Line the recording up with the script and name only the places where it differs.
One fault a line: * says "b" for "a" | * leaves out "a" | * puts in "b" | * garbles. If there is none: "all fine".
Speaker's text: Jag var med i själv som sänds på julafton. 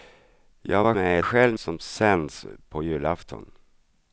all fine